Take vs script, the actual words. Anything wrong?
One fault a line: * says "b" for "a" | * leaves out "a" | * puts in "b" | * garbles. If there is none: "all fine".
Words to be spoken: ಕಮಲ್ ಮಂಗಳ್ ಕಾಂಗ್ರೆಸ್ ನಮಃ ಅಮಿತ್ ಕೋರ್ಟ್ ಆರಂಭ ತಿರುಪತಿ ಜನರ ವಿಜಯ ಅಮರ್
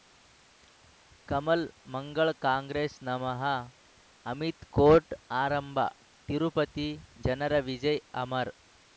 all fine